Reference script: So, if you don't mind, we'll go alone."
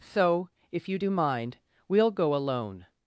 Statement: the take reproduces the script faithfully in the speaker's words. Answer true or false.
false